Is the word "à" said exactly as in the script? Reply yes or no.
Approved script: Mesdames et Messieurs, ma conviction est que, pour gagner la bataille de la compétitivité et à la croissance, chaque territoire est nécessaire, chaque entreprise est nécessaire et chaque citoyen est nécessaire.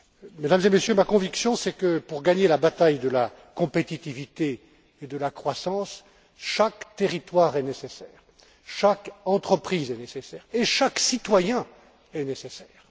no